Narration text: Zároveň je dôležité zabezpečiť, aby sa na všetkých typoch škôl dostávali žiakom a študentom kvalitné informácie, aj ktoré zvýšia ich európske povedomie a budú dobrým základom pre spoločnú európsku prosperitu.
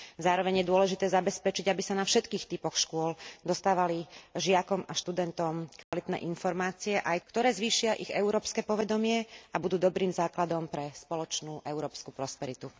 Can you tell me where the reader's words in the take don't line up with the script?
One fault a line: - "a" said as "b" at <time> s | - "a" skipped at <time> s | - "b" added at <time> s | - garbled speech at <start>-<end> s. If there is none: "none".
none